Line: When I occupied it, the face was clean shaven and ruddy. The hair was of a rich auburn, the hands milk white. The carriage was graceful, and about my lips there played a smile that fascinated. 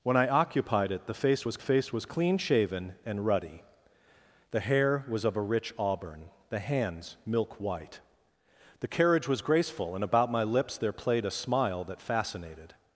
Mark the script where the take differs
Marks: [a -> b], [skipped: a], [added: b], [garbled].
When I occupied it, the face was [added: face was] clean shaven and ruddy. The hair was of a rich auburn, the hands milk white. The carriage was graceful, and about my lips there played a smile that fascinated.